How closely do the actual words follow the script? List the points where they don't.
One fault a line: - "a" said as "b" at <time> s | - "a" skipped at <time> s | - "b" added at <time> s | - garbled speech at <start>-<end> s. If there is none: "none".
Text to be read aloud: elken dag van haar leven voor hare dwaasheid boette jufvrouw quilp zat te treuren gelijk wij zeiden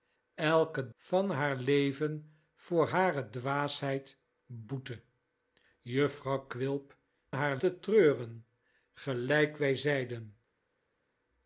- "dag" skipped at 0.9 s
- "zat" said as "haar" at 7.3 s